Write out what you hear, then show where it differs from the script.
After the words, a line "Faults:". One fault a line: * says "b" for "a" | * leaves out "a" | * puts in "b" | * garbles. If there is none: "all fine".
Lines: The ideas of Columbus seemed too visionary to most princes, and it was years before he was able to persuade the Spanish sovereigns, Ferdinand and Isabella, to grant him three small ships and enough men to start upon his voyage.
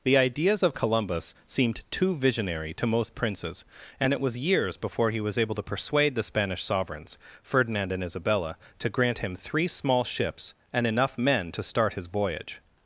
The ideas of Columbus seemed too visionary to most princes, and it was years before he was able to persuade the Spanish sovereigns, Ferdinand and Isabella, to grant him three small ships and enough men to start his voyage.
Faults:
* leaves out "upon"